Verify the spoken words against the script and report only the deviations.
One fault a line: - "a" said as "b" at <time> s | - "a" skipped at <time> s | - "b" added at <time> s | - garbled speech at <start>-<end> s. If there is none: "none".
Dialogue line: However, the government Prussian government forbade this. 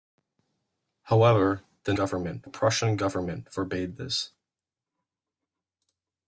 none